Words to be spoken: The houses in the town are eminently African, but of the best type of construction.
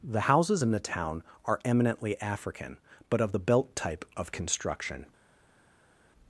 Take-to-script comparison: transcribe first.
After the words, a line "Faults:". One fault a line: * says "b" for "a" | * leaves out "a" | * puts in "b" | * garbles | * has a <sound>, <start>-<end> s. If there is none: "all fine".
The houses in the town are eminently African, but of the belt type of construction.
Faults:
* says "belt" for "best"